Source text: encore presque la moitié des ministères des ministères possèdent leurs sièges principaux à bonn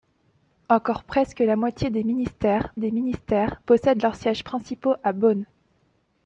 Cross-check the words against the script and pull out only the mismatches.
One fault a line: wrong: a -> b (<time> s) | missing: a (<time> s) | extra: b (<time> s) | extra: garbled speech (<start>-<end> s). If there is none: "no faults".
no faults